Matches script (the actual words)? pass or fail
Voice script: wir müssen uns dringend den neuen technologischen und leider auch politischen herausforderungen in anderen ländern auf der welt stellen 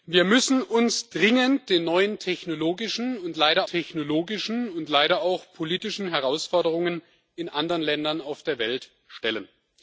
fail